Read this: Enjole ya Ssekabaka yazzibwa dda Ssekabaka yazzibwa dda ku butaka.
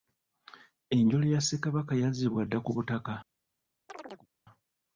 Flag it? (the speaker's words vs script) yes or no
yes